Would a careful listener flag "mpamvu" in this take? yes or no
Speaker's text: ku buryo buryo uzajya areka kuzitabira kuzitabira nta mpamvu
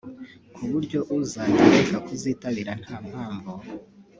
no